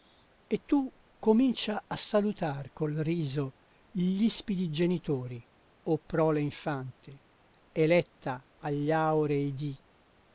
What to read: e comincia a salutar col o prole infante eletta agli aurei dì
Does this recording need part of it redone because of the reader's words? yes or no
yes